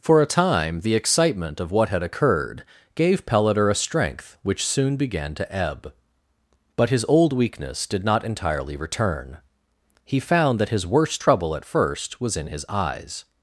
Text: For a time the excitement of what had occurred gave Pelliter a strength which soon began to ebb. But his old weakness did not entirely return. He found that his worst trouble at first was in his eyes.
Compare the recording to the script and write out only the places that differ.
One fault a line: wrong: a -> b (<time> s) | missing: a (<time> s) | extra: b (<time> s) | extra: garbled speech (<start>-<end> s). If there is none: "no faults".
no faults